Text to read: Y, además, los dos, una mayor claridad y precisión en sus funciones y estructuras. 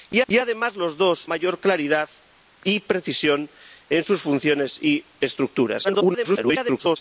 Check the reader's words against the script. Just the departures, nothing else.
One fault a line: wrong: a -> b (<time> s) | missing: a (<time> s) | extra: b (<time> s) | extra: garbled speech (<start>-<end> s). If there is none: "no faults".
extra: y (0.3 s)
missing: una (1.3 s)
extra: garbled speech (5.8-7.0 s)